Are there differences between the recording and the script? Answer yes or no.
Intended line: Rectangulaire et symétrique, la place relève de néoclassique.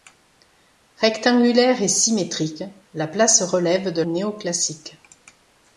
no